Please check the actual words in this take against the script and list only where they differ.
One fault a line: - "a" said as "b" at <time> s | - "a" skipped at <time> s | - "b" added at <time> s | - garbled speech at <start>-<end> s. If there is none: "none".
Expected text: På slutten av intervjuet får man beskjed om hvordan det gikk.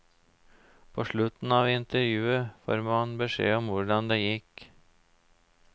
none